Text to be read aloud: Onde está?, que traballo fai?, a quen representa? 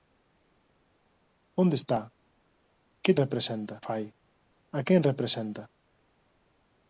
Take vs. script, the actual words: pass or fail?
fail